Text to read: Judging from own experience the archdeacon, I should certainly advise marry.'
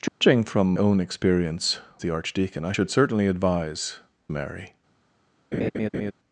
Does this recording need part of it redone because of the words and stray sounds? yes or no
yes